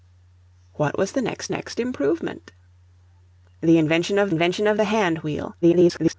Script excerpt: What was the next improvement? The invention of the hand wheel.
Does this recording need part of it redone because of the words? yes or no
yes